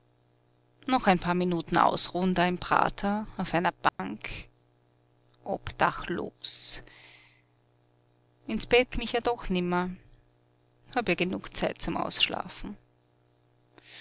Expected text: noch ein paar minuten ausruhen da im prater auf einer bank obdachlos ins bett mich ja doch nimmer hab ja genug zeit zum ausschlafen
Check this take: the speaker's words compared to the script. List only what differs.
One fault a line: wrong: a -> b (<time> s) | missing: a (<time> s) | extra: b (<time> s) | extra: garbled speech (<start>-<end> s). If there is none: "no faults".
no faults